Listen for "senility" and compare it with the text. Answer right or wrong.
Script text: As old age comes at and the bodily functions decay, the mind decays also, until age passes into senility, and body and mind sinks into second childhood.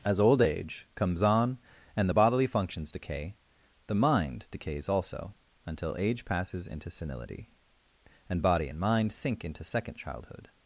right